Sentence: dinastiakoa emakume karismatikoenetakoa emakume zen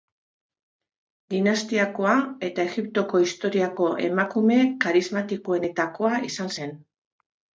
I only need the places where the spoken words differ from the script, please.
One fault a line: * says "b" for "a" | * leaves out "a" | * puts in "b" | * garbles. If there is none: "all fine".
* puts in "eta egiptoko historiako"
* says "izan" for "emakume"